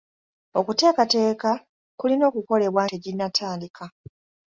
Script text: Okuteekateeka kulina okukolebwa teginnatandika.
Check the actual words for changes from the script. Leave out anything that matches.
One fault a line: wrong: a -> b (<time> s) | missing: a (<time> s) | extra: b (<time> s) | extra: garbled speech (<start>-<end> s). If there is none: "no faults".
no faults